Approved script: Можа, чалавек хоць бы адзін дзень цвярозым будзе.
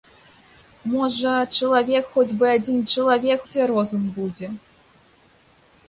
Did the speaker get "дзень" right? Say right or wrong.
wrong